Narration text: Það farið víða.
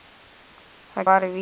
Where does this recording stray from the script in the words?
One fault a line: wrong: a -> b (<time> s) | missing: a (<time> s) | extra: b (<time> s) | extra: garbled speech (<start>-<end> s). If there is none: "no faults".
no faults